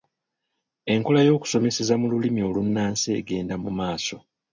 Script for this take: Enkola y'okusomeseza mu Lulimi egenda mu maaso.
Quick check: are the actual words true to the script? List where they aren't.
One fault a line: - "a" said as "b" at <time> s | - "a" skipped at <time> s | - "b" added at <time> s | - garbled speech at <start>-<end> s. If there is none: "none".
- "olunnansi" added at 2.5 s